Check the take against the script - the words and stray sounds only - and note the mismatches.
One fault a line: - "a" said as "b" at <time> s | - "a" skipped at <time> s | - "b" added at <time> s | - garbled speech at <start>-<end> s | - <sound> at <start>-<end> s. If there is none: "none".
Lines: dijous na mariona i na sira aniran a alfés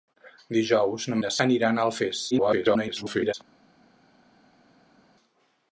- "mariona" skipped at 1.2 s
- "sira" skipped at 1.3 s
- garbled speech at 2.3-3.3 s